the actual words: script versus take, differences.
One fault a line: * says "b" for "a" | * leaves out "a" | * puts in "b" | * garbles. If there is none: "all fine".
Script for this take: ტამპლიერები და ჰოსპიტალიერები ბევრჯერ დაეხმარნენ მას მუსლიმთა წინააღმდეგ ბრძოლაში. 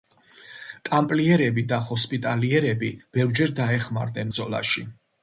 * leaves out "მას მუსლიმთა წინააღმდეგ"